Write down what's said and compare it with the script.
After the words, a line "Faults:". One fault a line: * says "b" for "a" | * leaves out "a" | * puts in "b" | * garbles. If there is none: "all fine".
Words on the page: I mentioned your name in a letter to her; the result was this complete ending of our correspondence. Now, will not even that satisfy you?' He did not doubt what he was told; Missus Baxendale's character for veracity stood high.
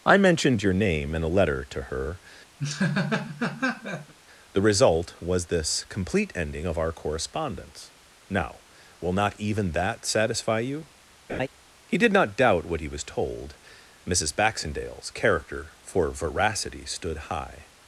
I mentioned your name in a letter to her; the result was this complete ending of our correspondence. Now, will not even that satisfy you?' He did not doubt what he was told; Missus Baxendale's character for veracity stood high.
Faults:
all fine